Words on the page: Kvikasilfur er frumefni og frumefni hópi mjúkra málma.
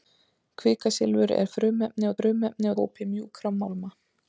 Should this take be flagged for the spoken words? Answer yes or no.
no